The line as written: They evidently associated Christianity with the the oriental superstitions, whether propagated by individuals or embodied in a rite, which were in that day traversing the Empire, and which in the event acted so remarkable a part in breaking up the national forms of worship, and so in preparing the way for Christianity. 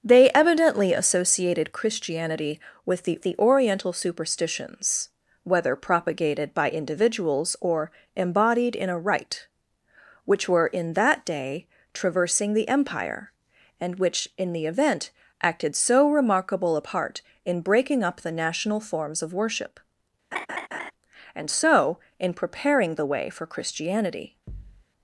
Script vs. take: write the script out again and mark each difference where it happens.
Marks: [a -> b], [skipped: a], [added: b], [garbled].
They evidently associated Christianity with the the oriental superstitions, whether propagated by individuals or embodied in a rite, which were in that day traversing the Empire, and which in the event acted so remarkable a part in breaking up the national forms of worship, and so in preparing the way for Christianity.